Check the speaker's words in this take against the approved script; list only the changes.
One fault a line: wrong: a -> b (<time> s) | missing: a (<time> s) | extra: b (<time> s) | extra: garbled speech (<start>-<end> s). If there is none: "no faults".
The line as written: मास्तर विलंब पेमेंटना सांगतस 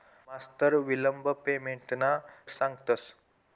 no faults